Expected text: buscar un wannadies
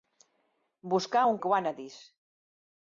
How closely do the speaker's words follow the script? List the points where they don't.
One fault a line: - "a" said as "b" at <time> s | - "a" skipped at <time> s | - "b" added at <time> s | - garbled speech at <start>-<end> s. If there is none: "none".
none